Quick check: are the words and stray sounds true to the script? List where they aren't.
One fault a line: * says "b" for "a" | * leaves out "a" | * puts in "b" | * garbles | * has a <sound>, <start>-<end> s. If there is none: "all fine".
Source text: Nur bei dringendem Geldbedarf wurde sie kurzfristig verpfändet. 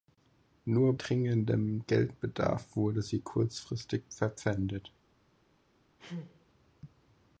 * leaves out "bei"
* has a sneeze, 6.0-6.5 s